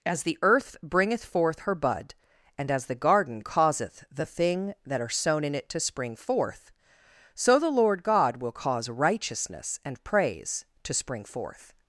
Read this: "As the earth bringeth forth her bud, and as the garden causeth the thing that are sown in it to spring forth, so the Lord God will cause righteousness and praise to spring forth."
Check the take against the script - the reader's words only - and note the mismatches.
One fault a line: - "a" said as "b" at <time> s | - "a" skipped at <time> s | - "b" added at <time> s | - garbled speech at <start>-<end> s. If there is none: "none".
none